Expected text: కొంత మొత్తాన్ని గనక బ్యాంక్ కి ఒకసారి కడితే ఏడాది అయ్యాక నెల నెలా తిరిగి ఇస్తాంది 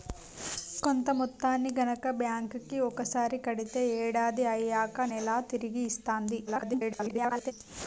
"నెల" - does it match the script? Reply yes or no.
no